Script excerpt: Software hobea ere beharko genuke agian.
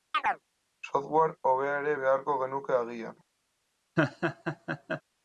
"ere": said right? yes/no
yes